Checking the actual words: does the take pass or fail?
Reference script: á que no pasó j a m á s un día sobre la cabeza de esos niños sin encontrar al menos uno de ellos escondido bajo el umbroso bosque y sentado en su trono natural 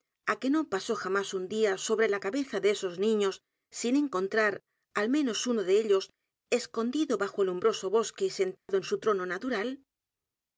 pass